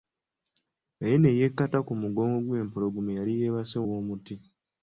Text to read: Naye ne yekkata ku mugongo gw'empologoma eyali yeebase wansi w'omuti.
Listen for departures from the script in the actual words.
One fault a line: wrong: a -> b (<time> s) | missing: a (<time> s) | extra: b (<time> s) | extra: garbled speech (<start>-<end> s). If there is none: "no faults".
missing: wansi (3.8 s)